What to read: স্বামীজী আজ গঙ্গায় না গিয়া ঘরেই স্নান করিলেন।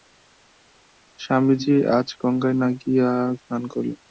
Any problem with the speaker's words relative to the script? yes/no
yes